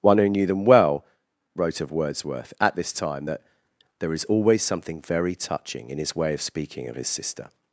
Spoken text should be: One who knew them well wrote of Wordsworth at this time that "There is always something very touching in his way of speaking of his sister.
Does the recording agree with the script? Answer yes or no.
yes